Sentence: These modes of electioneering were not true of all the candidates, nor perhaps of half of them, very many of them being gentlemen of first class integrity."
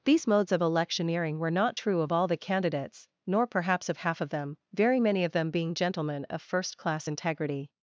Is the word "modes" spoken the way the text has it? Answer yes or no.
yes